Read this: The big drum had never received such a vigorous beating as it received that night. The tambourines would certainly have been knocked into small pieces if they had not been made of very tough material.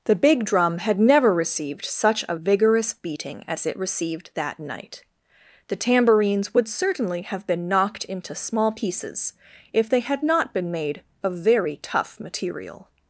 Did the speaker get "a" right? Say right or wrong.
right